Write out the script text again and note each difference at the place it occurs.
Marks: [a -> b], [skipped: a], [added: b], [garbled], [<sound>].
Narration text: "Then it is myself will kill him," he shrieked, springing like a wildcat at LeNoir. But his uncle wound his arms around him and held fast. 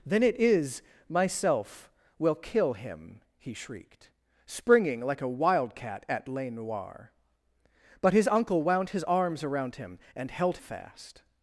"Then it is myself will kill him," he shrieked, springing like a wildcat at LeNoir. But his uncle wound his arms around him and held fast.